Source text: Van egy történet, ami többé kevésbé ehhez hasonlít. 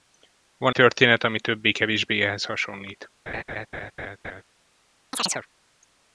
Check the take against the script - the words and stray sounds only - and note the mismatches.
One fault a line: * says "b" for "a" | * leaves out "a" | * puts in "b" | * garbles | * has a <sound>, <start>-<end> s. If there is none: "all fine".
* leaves out "egy"
* has a laugh, 3.3-4.4 s
* has a chirp, 5.1-5.5 s